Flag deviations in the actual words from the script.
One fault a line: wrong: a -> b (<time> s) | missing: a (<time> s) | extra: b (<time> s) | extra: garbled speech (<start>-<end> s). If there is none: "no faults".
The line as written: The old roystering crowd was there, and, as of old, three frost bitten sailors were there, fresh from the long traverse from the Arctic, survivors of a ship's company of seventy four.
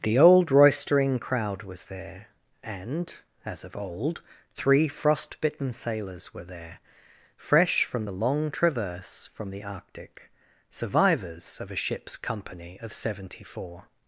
no faults